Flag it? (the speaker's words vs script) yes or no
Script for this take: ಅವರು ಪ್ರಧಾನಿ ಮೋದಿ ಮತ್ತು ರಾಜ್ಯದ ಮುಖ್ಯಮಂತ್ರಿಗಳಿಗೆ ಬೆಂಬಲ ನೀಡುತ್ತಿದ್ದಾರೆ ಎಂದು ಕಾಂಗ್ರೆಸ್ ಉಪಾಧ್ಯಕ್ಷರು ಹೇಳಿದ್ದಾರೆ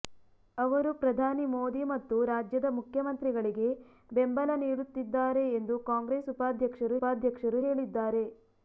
yes